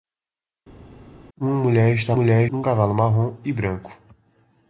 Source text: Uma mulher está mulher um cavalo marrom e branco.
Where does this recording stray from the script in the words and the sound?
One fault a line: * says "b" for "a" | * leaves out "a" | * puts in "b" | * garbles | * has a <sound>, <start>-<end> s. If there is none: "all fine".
all fine